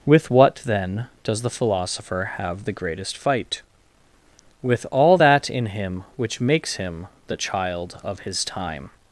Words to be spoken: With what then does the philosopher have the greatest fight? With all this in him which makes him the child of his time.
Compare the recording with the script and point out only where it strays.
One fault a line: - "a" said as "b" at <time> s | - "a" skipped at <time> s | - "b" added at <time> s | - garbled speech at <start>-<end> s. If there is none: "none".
- "this" said as "that" at 5.2 s